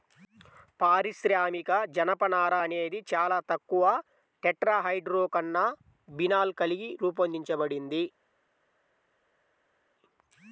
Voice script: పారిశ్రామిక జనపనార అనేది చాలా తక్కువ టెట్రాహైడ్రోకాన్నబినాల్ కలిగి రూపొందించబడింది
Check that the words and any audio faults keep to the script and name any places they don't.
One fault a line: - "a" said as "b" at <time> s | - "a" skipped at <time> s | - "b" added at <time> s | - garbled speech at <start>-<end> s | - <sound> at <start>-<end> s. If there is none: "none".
none